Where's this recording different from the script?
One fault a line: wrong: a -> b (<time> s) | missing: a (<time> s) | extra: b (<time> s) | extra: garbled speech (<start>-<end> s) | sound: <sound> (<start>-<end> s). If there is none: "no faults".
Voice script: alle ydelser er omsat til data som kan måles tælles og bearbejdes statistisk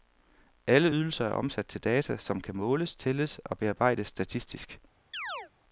sound: chirp (5.1-5.5 s)